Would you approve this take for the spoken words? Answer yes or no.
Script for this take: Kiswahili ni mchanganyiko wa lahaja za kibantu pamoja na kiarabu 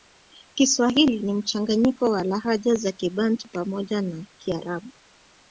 yes